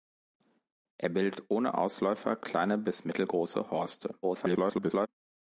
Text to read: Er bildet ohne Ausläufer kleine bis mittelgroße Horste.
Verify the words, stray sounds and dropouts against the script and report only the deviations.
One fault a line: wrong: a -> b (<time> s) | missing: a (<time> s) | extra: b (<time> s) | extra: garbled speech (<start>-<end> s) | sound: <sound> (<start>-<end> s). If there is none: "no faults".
extra: garbled speech (4.2-5.1 s)